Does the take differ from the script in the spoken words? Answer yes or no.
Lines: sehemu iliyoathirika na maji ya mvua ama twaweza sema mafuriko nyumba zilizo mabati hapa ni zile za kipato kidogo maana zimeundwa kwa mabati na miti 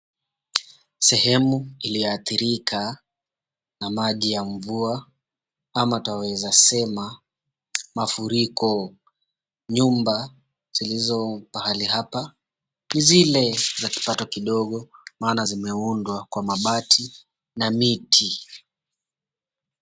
yes